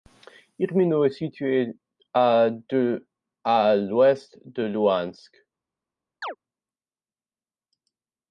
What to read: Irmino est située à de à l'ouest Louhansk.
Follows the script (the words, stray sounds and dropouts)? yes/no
no